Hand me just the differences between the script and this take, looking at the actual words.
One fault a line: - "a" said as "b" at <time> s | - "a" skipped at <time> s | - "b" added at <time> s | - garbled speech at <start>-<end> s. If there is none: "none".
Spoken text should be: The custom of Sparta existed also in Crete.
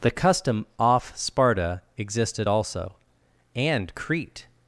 - "of" said as "off" at 0.8 s
- "in" said as "and" at 3.5 s